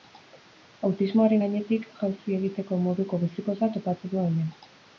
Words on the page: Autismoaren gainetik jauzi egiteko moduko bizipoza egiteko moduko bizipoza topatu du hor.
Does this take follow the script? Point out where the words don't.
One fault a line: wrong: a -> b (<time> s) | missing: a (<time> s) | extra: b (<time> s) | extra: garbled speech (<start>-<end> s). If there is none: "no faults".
missing: egiteko moduko bizipoza (3.7 s)
wrong: hor -> hemen (4.3 s)